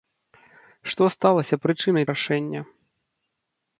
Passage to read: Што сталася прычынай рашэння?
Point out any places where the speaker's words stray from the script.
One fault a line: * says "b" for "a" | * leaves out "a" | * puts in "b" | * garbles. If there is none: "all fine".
all fine